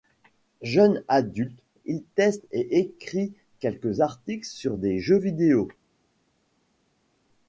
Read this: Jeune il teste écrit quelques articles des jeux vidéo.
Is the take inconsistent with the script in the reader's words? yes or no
yes